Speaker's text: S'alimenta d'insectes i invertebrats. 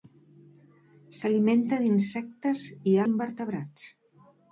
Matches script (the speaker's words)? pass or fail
pass